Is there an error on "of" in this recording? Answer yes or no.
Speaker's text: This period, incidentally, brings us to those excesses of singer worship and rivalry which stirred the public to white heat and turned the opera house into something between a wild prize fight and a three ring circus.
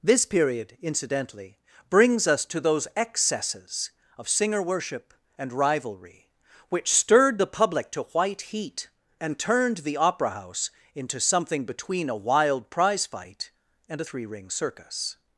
no